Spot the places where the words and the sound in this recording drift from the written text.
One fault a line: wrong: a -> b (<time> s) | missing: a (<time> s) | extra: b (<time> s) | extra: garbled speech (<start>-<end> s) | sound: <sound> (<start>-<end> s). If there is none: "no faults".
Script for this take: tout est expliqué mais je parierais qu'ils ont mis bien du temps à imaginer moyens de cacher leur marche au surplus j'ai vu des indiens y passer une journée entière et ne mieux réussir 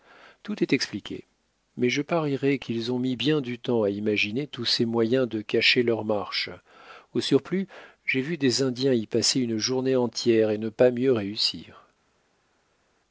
extra: tous ces (4.5 s)
extra: pas (10.7 s)